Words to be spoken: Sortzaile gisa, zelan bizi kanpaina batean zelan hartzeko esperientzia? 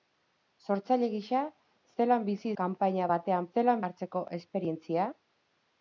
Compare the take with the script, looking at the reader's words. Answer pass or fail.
pass